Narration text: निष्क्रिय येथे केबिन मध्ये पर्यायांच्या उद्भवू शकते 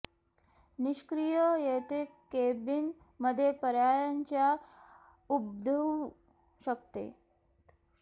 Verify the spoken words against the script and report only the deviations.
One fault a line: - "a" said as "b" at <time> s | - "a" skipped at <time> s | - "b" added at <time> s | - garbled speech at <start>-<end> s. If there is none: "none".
none